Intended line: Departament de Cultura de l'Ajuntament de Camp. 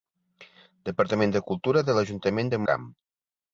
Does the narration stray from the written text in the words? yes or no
no